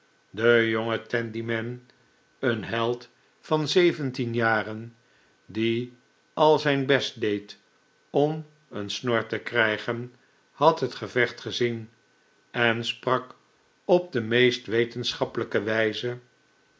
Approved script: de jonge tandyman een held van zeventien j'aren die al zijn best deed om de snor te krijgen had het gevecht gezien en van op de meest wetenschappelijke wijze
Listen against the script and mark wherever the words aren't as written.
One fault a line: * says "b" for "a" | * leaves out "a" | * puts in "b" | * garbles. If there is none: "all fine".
* says "een" for "de"
* says "sprak" for "van"